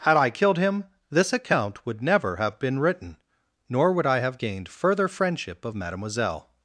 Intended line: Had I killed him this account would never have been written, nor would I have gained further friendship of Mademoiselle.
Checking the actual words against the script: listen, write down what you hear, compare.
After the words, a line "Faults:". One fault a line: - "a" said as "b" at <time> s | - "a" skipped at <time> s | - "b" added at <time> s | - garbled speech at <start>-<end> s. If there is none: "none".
Had I killed him this account would never have been written, nor would I have gained further friendship of Mademoiselle.
Faults:
none